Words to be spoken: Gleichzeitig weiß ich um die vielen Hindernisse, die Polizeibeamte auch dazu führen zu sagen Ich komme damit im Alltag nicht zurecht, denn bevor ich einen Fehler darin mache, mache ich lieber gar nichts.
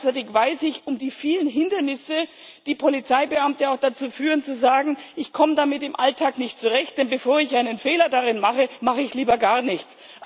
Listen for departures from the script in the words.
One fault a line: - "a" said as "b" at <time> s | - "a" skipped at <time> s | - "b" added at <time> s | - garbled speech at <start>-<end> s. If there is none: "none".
none